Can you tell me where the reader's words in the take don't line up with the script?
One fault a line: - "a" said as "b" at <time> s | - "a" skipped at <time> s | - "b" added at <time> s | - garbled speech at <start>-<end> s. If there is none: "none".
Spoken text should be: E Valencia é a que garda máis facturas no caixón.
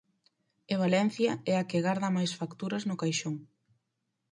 none